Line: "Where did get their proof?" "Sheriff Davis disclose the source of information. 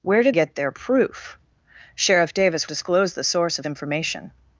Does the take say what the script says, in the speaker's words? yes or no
yes